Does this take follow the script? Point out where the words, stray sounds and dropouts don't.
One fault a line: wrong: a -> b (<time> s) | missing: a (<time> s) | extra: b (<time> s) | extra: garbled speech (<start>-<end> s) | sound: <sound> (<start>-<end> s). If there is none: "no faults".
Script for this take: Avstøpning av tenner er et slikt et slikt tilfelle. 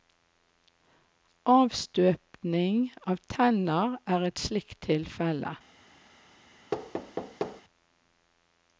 missing: et slikt (4.8 s)
sound: thud (6.7-7.6 s)